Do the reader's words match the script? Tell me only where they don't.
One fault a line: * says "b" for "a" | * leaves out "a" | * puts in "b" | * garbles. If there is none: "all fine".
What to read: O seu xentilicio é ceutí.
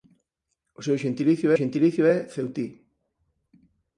* puts in "xentilicio"